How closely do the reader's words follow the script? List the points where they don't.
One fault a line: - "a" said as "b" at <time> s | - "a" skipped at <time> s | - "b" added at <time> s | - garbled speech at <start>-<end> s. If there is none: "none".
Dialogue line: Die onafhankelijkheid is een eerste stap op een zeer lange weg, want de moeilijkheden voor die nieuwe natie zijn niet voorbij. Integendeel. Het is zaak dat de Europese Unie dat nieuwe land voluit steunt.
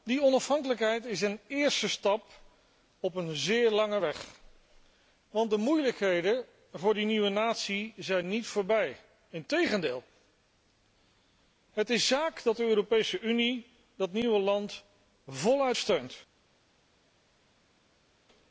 none